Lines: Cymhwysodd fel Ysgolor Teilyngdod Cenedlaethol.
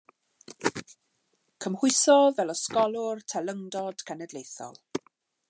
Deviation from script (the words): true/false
false